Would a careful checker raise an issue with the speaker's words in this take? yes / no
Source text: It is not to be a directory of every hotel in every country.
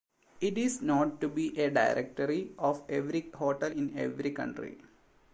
no